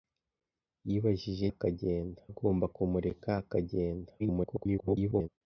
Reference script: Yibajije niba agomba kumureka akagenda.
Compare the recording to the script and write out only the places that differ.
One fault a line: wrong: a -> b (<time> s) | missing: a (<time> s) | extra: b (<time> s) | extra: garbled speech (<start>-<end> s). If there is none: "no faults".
wrong: niba -> akagenda (1.5 s)
extra: garbled speech (4.2-5.3 s)